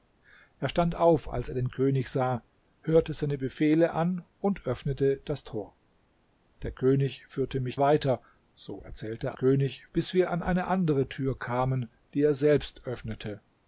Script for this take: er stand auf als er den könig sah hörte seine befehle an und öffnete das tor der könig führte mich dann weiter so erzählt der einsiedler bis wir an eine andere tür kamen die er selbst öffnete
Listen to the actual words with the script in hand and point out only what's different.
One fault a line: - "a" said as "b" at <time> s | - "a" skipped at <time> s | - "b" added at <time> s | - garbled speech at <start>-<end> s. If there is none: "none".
- "dann" skipped at 7.8 s
- "einsiedler" said as "könig" at 9.3 s